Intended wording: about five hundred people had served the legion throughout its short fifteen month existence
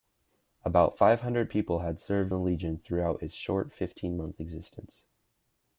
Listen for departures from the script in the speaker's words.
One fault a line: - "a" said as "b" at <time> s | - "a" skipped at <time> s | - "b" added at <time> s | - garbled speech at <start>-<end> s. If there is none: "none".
none